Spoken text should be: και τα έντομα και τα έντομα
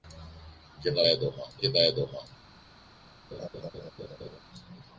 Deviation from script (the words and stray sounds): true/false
true